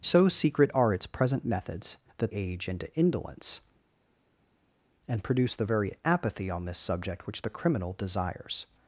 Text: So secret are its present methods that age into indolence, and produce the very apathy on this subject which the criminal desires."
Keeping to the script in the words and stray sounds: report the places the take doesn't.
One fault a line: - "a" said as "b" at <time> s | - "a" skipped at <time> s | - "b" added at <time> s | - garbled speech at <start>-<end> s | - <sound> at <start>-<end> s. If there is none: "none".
none